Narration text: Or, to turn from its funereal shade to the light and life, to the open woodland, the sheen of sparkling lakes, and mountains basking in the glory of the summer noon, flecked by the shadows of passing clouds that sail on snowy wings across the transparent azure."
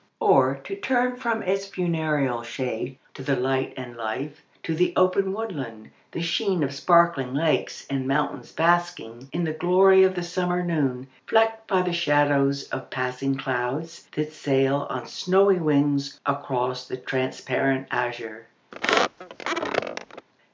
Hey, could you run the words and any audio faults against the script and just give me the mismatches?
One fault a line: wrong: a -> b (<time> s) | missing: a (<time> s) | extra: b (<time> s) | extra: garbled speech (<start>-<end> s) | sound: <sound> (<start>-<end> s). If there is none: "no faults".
sound: squeak (18.7-20.3 s)